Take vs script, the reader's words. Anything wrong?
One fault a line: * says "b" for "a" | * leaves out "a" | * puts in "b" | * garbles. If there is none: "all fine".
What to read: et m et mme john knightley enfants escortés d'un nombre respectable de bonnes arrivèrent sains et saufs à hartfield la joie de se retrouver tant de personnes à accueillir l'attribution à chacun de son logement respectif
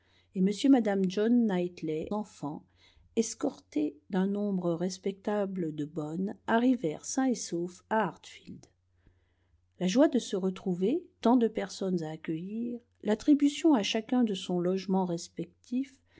all fine